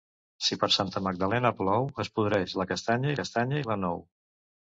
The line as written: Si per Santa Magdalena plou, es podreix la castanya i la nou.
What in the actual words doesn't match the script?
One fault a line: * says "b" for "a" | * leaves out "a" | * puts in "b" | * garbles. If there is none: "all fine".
* puts in "castanya"